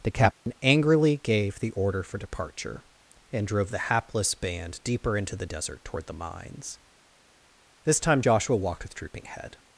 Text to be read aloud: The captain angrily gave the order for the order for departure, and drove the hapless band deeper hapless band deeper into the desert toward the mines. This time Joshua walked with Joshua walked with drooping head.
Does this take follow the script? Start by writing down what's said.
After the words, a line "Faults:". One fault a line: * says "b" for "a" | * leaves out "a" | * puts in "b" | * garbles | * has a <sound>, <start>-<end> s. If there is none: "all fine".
The captain angrily gave the order for departure, and drove the hapless band deeper into the desert toward the mines. This time Joshua walked with drooping head.
Faults:
* has a dropout, 0.3-0.5 s
* leaves out "the order for"
* leaves out "hapless band deeper"
* leaves out "Joshua walked with"